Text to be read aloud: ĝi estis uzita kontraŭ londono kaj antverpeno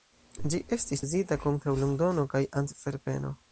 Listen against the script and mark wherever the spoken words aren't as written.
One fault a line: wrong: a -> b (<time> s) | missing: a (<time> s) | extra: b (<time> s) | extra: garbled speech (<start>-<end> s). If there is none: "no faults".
no faults